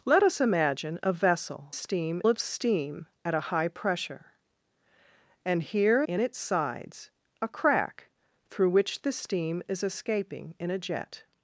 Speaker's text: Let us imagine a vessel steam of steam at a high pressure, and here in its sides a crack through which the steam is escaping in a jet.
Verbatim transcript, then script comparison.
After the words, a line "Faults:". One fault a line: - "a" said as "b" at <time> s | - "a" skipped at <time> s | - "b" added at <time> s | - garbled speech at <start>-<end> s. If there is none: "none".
Let us imagine a vessel steam of steam at a high pressure, and here in its sides a crack through which the steam is escaping in a jet.
Faults:
none